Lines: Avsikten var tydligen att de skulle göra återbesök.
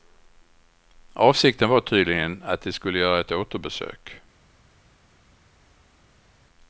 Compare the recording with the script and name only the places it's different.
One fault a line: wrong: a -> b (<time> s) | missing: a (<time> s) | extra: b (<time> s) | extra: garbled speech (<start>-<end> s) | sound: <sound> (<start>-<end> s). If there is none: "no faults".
extra: ett (3.2 s)